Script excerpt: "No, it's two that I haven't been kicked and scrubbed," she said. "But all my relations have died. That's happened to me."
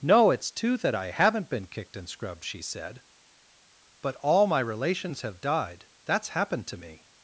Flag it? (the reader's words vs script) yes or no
no